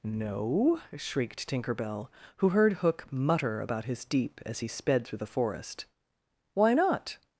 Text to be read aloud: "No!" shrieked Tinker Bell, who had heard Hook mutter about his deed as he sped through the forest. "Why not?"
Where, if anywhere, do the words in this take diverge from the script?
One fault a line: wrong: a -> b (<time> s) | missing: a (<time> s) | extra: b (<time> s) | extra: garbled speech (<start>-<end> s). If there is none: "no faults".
missing: had (2.5 s)
wrong: deed -> deep (4.0 s)